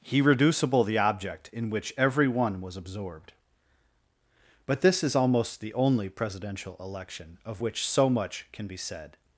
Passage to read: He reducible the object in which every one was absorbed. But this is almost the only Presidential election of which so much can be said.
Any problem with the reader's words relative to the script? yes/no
no